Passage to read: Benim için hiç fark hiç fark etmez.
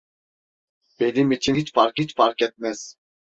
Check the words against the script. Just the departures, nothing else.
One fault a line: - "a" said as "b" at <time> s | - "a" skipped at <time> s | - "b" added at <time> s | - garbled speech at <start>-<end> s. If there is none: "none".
none